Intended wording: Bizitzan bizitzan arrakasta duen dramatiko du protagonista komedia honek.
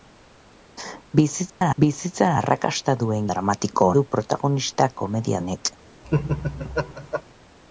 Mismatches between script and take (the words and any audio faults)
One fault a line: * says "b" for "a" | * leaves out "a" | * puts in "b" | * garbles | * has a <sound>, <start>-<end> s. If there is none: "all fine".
* has a dropout, 1.5-1.6 s
* has a laugh, 6.0-7.2 s